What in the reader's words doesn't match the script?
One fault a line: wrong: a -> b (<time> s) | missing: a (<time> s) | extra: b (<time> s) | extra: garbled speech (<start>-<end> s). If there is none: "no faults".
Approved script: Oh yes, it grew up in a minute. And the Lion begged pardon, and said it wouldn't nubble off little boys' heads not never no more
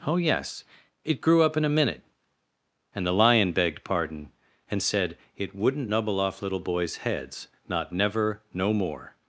no faults